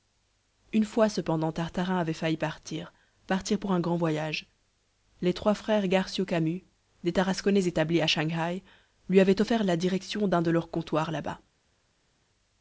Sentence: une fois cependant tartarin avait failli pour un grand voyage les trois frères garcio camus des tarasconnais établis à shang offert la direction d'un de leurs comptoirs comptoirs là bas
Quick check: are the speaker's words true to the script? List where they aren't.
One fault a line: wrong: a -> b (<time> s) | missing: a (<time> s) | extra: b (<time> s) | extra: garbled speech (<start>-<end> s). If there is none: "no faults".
extra: partir partir (2.4 s)
extra: haï lui avaient (8.3 s)
missing: comptoirs (11.1 s)